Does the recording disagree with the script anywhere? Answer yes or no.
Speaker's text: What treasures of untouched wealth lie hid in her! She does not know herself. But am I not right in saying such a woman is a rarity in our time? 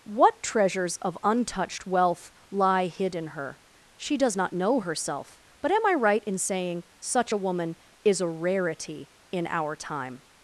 yes